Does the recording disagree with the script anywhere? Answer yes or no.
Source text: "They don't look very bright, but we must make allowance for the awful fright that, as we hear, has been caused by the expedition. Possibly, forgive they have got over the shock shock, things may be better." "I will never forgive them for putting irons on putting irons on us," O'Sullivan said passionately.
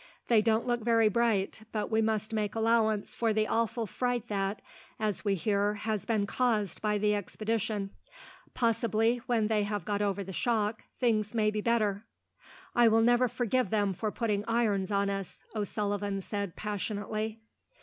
yes